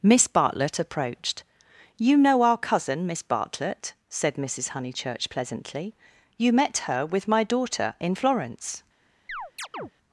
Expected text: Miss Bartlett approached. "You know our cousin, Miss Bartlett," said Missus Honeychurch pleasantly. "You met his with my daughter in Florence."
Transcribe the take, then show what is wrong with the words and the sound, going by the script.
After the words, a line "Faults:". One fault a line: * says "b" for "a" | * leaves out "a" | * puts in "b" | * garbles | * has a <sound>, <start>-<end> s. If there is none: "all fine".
Miss Bartlett approached. "You know our cousin, Miss Bartlett," said Missus Honeychurch pleasantly. "You met her with my daughter in Florence."
Faults:
* says "her" for "his"
* has a chirp, 9.3-9.9 s